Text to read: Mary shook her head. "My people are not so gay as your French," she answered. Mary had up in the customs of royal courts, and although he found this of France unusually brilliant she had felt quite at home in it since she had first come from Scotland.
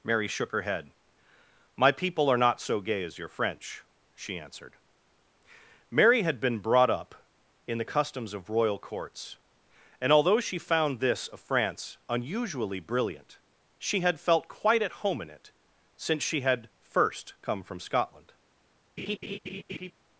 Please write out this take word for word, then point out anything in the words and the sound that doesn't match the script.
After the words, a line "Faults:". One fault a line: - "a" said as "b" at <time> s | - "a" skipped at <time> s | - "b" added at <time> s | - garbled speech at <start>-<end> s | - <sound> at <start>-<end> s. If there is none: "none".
Mary shook her head. "My people are not so gay as your French," she answered. Mary had been brought up in the customs of royal courts, and although she found this of France unusually brilliant she had felt quite at home in it since she had first come from Scotland.
Faults:
- "been brought" added at 6.4 s
- "he" said as "she" at 10.4 s
- laugh at 19.0-19.9 s